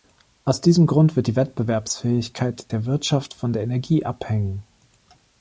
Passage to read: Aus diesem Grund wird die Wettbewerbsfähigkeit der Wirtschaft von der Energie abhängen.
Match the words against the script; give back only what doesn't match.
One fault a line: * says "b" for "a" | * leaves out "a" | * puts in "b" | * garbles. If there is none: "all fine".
all fine